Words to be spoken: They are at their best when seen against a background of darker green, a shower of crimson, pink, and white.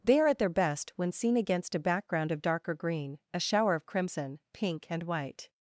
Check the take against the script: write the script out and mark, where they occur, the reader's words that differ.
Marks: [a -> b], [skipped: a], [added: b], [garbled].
They are at their best when seen against a background of darker green, a shower of crimson, pink, and white.